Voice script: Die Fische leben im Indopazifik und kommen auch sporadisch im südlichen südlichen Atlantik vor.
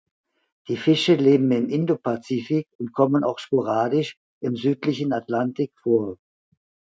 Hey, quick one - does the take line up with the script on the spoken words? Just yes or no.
no